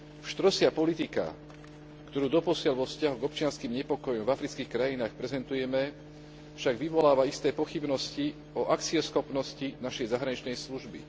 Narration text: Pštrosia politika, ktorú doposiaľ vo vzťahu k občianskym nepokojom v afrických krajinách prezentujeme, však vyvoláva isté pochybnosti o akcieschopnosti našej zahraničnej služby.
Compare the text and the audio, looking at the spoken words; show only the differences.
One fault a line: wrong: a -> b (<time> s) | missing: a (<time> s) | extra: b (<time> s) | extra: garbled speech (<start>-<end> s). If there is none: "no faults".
no faults